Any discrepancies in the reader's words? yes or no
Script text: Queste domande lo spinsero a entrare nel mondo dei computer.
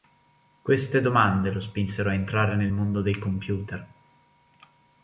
no